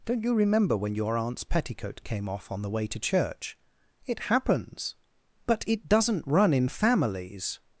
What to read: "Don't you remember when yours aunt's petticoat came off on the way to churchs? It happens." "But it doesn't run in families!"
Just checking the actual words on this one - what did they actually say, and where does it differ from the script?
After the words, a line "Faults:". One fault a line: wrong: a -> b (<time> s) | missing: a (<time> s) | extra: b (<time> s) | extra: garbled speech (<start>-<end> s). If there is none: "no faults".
"Don't you remember when your aunt's petticoat came off on the way to church? It happens." "But it doesn't run in families!"
Faults:
wrong: yours -> your (0.9 s)
wrong: churchs -> church (3.0 s)